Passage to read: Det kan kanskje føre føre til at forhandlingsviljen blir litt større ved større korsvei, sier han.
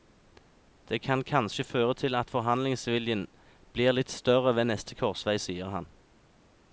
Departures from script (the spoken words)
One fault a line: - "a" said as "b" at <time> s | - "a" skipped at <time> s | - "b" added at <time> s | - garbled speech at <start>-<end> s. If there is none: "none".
- "føre" skipped at 1.9 s
- "større" said as "neste" at 4.7 s